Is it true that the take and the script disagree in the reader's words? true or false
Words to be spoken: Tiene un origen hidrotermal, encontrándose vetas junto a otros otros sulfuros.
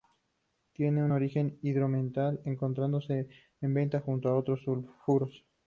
true